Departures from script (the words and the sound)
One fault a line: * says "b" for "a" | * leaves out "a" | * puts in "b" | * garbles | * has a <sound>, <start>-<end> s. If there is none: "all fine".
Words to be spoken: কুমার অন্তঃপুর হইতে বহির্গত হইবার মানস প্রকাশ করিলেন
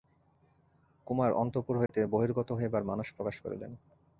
* has a dropout, 1.9-1.9 s